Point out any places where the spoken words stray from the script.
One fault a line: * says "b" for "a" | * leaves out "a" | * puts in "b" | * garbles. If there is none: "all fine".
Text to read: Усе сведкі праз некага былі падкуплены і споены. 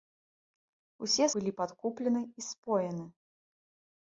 * leaves out "сведкі праз некага"